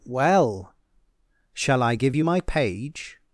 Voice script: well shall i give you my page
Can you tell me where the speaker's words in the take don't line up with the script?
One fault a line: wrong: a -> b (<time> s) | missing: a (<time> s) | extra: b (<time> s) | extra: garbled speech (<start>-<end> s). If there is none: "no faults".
no faults